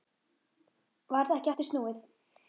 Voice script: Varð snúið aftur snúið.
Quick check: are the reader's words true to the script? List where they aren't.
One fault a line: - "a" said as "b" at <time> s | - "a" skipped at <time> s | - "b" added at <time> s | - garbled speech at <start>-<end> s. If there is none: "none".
- "snúið" said as "ekki" at 1.4 s